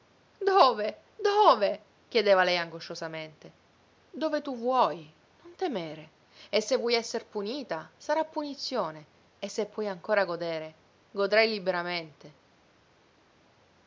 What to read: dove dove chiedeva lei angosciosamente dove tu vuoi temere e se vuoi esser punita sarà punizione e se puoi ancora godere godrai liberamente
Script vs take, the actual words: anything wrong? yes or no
yes